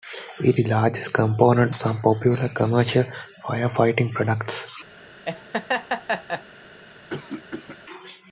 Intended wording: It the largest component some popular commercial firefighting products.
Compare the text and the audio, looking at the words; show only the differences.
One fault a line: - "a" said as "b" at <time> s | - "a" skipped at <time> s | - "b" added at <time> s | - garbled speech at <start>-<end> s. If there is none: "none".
none